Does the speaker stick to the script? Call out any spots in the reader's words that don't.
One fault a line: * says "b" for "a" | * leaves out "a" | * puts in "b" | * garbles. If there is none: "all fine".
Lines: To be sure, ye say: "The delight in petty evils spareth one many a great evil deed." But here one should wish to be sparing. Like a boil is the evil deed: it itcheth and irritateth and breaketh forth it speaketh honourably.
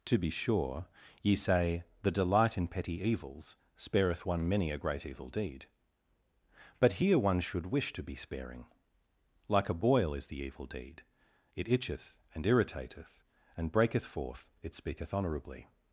all fine